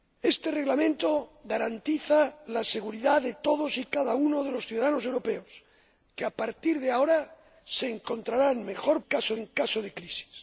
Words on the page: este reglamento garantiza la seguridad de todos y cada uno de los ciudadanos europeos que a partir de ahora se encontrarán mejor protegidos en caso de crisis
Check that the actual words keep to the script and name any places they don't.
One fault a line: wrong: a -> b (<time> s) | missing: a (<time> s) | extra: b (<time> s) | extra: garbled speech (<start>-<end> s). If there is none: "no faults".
wrong: protegidos -> caso (9.0 s)